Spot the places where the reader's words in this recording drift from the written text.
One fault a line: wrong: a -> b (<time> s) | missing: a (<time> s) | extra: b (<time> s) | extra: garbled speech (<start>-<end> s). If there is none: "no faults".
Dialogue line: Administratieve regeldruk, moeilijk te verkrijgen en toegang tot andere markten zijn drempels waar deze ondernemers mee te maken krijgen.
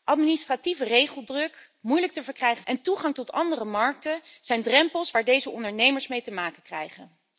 no faults